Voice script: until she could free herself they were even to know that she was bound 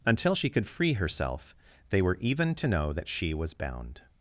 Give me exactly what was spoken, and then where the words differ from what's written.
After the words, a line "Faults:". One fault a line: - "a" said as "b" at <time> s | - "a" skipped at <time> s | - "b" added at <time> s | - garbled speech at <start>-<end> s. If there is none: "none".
until she could free herself they were even to know that she was bound
Faults:
none